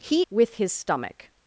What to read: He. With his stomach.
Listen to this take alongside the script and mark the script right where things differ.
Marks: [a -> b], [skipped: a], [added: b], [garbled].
He. With his stomach.